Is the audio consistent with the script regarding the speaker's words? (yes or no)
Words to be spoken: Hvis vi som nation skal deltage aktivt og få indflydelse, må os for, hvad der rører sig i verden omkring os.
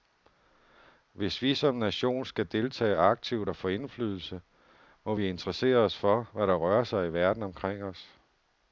no